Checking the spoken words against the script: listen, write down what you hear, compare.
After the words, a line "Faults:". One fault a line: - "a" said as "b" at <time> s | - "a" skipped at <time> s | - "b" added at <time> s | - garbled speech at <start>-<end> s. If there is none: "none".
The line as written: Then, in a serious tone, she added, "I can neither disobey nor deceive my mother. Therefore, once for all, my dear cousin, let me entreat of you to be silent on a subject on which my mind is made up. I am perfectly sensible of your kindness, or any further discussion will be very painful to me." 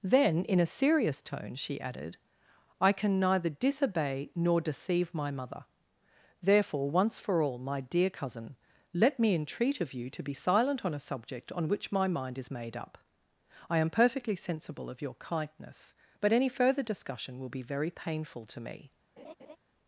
Then, in a serious tone, she added, "I can neither disobey nor deceive my mother. Therefore, once for all, my dear cousin, let me entreat of you to be silent on a subject on which my mind is made up. I am perfectly sensible of your kindness, but any further discussion will be very painful to me."
Faults:
- "or" said as "but" at 16.2 s